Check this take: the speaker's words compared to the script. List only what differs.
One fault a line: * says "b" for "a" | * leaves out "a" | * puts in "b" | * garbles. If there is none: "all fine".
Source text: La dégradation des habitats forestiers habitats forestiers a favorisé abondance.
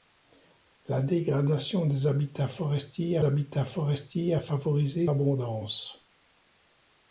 all fine